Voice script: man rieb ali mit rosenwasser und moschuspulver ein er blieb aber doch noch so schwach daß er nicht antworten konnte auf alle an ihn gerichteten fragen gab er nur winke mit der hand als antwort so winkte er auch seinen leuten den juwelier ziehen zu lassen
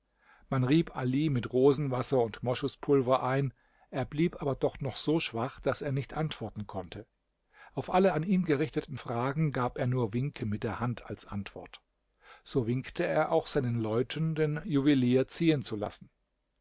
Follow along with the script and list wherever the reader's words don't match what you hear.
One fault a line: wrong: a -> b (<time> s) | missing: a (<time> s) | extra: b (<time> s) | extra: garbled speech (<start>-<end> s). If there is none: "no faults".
no faults